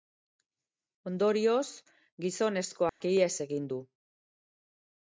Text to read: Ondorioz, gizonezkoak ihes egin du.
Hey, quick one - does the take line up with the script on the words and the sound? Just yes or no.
no